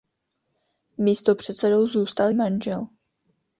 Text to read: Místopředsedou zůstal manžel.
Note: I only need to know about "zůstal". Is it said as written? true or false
true